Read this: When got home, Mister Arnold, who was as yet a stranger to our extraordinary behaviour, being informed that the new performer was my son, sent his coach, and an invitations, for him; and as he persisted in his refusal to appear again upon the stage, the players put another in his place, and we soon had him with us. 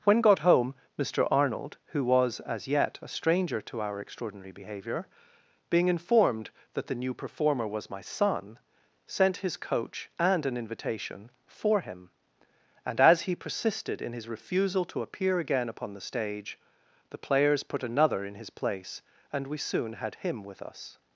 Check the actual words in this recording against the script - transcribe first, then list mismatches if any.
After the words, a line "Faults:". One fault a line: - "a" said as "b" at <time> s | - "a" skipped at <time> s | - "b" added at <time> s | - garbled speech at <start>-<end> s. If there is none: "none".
When got home, Mister Arnold, who was as yet a stranger to our extraordinary behaviour, being informed that the new performer was my son, sent his coach, and an invitation, for him; and as he persisted in his refusal to appear again upon the stage, the players put another in his place, and we soon had him with us.
Faults:
- "invitations" said as "invitation" at 10.6 s